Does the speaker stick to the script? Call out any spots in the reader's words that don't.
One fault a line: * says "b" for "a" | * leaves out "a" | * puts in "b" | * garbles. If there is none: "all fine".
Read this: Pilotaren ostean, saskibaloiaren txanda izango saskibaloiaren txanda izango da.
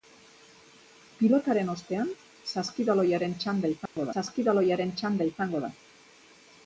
all fine